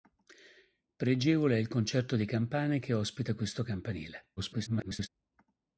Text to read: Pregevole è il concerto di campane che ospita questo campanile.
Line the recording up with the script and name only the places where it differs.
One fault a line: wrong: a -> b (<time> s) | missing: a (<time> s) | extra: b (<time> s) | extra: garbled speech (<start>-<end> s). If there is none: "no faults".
extra: garbled speech (4.4-5.1 s)